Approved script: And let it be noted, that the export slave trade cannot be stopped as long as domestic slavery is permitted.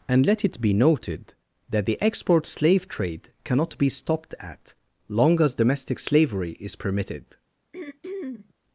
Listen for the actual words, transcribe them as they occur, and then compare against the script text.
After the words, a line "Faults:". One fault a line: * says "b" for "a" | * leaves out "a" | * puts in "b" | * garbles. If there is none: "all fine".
And let it be noted, that the export slave trade cannot be stopped at long as domestic slavery is permitted.
Faults:
* says "at" for "as"